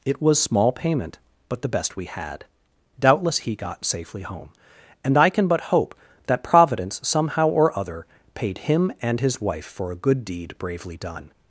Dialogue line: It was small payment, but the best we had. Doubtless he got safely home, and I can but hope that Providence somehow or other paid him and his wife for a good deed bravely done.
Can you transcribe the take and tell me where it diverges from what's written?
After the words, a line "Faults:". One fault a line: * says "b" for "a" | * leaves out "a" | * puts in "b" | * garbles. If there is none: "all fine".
It was small payment, but the best we had. Doubtless he got safely home, and I can but hope that Providence somehow or other paid him and his wife for a good deed bravely done.
Faults:
all fine